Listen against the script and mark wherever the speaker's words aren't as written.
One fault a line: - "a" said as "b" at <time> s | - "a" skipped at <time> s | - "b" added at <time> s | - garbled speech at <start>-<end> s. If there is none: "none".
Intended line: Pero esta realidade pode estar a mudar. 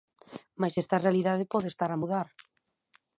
- "Pero" said as "Mais" at 0.6 s